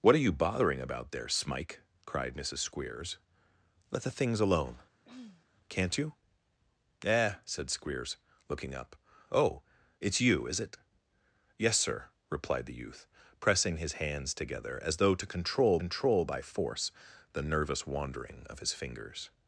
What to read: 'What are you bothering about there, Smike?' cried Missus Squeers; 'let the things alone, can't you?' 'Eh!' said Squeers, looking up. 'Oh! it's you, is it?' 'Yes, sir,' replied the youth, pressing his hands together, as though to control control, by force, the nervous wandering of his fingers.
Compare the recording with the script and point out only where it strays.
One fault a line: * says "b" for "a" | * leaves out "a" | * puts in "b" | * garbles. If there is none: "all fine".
all fine